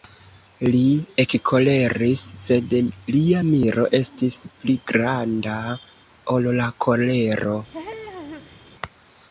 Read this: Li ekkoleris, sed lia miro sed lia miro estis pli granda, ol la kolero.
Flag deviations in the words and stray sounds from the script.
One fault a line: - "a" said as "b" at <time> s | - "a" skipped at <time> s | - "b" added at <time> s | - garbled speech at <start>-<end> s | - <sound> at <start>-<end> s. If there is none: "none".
- "sed lia miro" skipped at 3.8 s
- laugh at 7.7-8.6 s